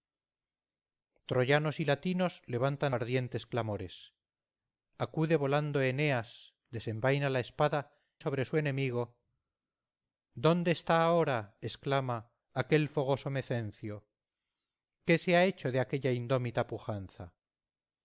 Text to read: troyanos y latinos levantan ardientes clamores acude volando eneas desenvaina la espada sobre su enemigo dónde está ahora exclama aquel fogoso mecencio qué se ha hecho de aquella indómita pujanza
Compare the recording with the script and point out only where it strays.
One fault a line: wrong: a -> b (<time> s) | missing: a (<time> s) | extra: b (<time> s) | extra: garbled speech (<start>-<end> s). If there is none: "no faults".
no faults